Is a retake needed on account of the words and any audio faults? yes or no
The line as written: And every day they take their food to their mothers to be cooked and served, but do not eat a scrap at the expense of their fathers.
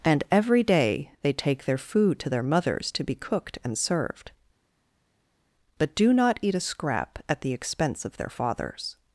no